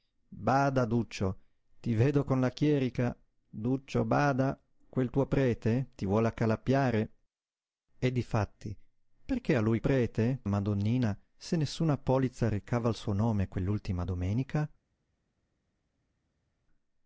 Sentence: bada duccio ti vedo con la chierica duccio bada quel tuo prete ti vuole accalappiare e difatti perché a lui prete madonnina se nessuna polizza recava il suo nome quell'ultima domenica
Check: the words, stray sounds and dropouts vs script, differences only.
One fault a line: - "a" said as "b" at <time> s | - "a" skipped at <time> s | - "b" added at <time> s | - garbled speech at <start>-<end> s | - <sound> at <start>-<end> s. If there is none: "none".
none